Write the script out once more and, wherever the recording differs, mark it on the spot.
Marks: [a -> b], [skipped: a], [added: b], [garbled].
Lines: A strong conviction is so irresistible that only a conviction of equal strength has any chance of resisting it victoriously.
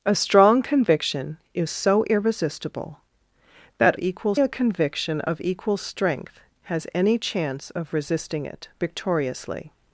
A strong conviction is so irresistible that [only -> equal] a conviction of equal strength has any chance of resisting it victoriously.